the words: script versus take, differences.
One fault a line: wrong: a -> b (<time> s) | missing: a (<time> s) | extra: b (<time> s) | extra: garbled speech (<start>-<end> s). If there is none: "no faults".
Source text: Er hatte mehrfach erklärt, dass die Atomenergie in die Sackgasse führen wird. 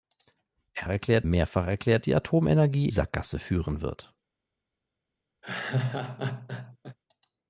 wrong: hatte -> erklärt (0.9 s)
missing: dass (2.0 s)
missing: in die (2.9 s)